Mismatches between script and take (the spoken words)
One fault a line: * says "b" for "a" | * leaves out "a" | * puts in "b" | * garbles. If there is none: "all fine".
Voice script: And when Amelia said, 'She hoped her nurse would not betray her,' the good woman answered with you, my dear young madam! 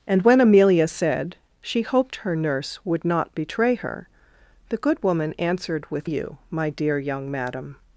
all fine